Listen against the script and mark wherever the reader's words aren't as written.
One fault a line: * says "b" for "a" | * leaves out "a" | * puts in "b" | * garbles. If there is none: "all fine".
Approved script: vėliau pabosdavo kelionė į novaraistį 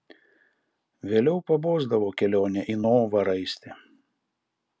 all fine